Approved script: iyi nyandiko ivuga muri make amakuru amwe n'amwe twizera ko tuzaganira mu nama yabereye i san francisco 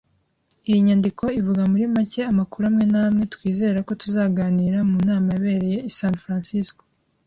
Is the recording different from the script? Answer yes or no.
no